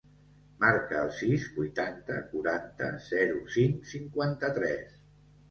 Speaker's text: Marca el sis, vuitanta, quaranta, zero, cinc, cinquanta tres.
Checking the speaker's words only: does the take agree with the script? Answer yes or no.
yes